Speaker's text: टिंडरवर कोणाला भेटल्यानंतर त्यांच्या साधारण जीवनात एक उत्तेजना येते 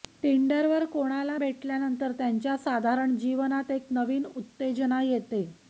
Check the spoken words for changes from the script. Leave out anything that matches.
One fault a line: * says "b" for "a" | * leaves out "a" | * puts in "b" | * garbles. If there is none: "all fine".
* puts in "नवीन"